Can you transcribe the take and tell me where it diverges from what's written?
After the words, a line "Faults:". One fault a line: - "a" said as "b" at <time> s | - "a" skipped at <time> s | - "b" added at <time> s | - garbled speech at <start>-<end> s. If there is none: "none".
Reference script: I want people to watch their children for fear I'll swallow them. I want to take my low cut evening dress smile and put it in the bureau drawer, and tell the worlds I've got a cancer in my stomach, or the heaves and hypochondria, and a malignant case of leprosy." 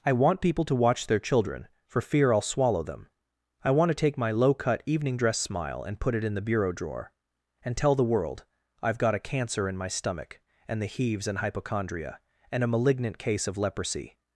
I want people to watch their children for fear I'll swallow them. I want to take my low cut evening dress smile and put it in the bureau drawer, and tell the world I've got a cancer in my stomach, and the heaves and hypochondria, and a malignant case of leprosy."
Faults:
- "worlds" said as "world" at 8.0 s
- "or" said as "and" at 10.7 s